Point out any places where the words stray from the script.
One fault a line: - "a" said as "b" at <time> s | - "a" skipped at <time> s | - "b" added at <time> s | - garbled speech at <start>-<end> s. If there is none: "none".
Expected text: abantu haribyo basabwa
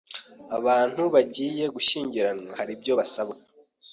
- "bagiye gushyingiranwa" added at 1.1 s